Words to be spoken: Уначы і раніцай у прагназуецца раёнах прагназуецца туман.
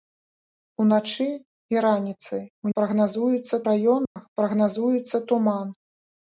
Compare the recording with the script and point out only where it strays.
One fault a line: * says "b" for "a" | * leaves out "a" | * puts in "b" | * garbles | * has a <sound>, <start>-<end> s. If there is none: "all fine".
* has a dropout, 4.1-4.2 s